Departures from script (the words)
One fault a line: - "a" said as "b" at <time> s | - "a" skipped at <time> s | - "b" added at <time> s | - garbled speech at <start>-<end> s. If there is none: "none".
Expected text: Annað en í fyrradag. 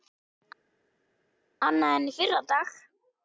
none